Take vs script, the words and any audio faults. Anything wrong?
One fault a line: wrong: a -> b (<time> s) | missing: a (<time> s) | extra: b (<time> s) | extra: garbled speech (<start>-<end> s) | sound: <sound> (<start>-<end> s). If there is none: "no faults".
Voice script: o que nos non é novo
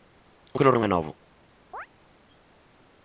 sound: chirp (1.7-1.9 s)